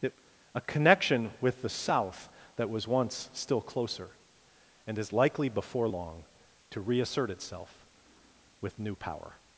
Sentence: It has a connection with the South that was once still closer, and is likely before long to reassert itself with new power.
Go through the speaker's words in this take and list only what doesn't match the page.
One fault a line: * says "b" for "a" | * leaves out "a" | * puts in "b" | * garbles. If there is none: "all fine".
* leaves out "has"